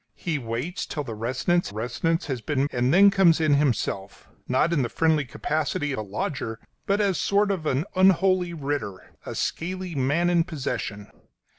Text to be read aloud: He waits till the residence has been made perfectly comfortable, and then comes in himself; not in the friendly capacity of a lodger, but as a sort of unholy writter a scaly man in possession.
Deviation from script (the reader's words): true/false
true